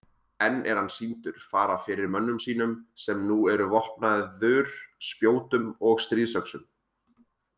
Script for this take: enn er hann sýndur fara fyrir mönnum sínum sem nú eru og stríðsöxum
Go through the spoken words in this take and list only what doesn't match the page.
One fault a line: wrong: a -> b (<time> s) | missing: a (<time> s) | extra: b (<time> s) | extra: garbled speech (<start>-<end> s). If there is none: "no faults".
extra: vopnaður spjótum (3.7 s)